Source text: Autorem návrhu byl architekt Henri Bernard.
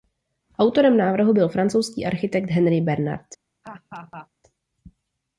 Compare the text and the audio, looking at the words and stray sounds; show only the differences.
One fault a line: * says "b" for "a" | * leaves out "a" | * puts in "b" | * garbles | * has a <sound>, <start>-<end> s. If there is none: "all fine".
* puts in "francouzský"
* has a laugh, 3.6-4.3 s